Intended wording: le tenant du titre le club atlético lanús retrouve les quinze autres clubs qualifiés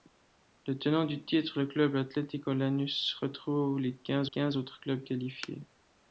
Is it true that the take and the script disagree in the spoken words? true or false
true